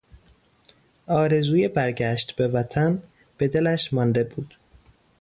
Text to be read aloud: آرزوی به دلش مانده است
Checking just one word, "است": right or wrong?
wrong